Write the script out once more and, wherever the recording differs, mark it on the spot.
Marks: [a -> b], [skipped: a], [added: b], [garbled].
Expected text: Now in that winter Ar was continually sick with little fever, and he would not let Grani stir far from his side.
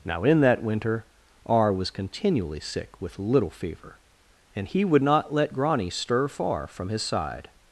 Now in that winter Ar was continually sick with little fever, and he would not let Grani stir far from his side.